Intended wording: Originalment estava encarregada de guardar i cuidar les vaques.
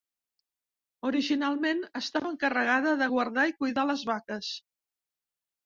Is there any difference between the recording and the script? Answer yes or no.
no